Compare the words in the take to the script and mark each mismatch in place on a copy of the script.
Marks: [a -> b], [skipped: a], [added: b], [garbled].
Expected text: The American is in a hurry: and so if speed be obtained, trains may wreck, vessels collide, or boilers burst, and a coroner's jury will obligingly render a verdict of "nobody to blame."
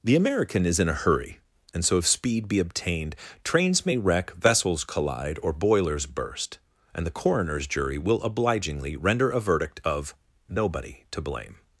The American is in a hurry: and so if speed be obtained, trains may wreck, vessels collide, or boilers burst, and [a -> the] coroner's jury will obligingly render a verdict of "nobody to blame."